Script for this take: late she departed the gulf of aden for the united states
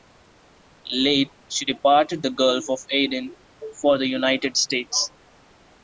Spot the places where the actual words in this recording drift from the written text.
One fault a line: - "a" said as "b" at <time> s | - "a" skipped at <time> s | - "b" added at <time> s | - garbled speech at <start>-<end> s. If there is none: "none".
none